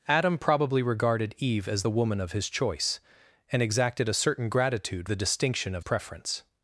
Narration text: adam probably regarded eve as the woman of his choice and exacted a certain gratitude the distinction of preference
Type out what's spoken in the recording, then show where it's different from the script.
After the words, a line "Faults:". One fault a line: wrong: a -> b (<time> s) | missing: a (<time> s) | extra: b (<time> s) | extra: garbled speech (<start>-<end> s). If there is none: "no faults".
adam probably regarded eve as the woman of his choice and exacted a certain gratitude the distinction of preference
Faults:
no faults